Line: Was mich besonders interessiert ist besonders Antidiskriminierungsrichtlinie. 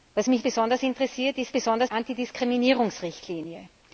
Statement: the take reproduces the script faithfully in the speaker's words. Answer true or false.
true